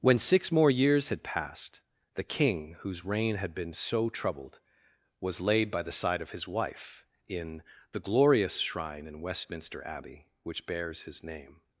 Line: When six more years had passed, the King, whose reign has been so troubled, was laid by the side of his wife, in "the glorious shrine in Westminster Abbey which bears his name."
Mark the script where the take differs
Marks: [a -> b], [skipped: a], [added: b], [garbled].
When six more years had passed, the King, whose reign [has -> had] been so troubled, was laid by the side of his wife, in "the glorious shrine in Westminster Abbey which bears his name."